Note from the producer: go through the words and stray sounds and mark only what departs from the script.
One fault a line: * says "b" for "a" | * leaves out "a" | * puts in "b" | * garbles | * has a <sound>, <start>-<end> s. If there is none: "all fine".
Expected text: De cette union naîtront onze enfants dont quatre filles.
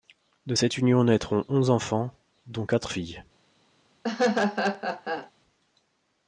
* has a laugh, 4.0-5.3 s